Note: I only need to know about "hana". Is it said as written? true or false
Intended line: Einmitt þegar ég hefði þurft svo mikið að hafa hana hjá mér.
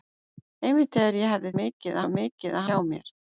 false